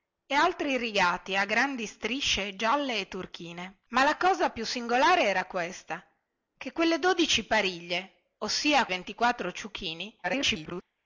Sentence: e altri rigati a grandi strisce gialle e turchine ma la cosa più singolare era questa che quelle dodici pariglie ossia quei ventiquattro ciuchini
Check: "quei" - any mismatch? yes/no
yes